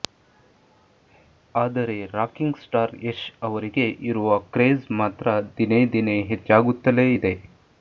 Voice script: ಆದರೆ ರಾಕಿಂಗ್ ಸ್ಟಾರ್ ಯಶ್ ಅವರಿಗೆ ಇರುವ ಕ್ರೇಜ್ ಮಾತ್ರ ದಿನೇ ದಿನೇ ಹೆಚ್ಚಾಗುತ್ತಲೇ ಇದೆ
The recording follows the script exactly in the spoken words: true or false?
true